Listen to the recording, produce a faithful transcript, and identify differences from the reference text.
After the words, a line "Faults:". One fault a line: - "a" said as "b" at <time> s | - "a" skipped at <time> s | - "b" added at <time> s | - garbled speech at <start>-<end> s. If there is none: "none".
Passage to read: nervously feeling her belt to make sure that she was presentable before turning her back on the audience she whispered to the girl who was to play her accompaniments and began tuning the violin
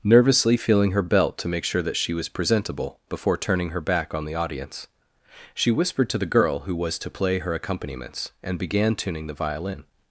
nervously feeling her belt to make sure that she was presentable before turning her back on the audience she whispered to the girl who was to play her accompaniments and began tuning the violin
Faults:
none